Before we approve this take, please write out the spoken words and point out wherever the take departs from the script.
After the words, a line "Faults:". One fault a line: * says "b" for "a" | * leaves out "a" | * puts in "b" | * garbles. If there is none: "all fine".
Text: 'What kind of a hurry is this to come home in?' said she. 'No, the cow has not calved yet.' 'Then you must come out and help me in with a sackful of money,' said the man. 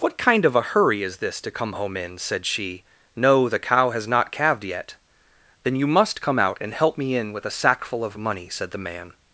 'What kind of a hurry is this to come home in?' said she. 'No, the cow has not calved yet.' 'Then you must come out and help me in with a sackful of money,' said the man.
Faults:
all fine